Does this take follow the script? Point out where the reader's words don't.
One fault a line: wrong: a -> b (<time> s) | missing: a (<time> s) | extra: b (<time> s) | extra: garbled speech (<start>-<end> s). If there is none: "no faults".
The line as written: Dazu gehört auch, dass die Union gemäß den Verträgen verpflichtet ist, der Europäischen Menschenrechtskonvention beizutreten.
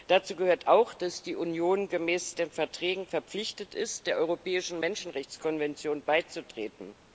no faults